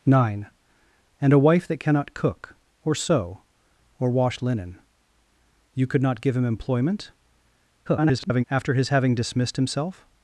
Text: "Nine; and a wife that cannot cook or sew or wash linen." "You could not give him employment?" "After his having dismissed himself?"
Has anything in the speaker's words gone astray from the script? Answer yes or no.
yes